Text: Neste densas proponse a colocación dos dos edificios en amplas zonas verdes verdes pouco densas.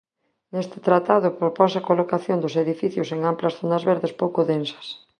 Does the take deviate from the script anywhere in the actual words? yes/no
yes